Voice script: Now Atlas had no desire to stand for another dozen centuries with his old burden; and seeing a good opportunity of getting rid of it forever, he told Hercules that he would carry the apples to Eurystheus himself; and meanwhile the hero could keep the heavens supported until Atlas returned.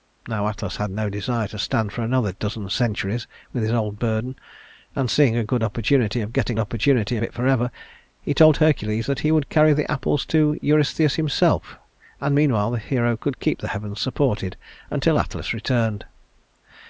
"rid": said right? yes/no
no